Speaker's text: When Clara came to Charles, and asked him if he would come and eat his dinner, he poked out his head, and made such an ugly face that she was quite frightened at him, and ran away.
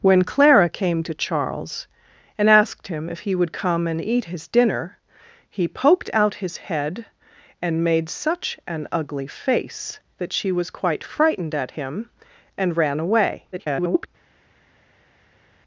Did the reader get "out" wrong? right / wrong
right